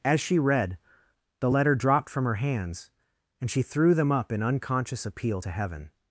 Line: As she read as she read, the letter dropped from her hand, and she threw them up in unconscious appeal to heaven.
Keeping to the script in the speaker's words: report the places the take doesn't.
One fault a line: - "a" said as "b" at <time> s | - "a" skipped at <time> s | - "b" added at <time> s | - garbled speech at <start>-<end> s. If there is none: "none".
- "as she read" skipped at 0.8 s
- "hand" said as "hands" at 2.4 s